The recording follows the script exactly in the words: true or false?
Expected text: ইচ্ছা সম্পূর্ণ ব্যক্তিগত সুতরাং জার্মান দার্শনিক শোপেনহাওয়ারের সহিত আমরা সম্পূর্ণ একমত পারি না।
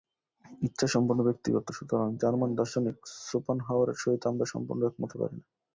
true